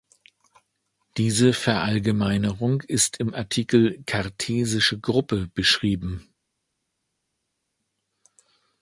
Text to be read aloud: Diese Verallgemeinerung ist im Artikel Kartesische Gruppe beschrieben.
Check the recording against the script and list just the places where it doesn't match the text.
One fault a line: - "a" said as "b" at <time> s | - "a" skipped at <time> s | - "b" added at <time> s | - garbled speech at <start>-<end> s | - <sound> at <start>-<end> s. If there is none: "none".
none